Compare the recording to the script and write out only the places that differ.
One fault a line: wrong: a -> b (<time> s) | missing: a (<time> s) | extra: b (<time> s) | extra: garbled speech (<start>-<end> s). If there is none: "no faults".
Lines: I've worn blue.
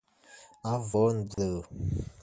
no faults